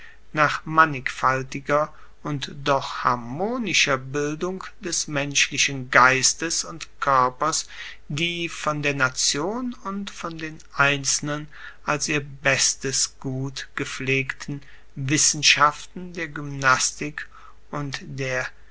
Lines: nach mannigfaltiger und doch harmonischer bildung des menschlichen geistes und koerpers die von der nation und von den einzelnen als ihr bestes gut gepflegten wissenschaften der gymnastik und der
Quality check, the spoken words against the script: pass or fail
pass